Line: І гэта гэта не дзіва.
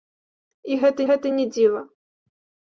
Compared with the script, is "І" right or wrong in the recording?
right